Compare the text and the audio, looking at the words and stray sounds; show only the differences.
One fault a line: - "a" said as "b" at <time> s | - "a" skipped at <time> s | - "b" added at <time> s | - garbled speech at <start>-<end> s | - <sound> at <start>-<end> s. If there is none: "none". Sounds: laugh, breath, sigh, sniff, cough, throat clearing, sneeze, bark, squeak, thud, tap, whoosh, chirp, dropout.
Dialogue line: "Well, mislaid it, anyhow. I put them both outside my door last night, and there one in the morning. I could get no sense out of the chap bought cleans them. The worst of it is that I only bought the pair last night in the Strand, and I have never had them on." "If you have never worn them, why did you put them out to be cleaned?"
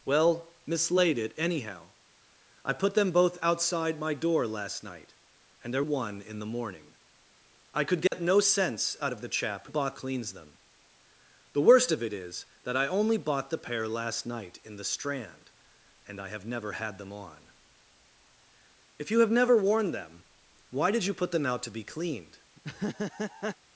- dropout at 8.1-8.1 s
- laugh at 22.6-23.6 s